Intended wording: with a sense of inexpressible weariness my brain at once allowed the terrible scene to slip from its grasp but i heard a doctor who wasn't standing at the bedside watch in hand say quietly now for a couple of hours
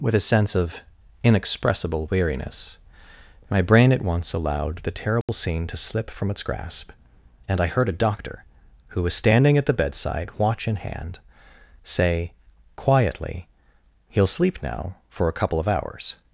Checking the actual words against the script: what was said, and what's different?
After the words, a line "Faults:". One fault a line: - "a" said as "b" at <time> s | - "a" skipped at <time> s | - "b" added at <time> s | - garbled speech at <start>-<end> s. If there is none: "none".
with a sense of inexpressible weariness my brain at once allowed the terrible scene to slip from its grasp and i heard a doctor who was standing at the bedside watch in hand say quietly he'll sleep now for a couple of hours
Faults:
- "but" said as "and" at 7.5 s
- "wasn't" said as "was" at 9.0 s
- "he'll sleep" added at 14.1 s